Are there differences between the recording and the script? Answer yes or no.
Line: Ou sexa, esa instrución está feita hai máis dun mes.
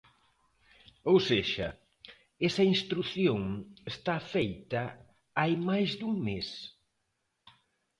no